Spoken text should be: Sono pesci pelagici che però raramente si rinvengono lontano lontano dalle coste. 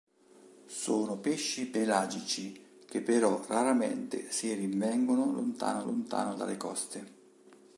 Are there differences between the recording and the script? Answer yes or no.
no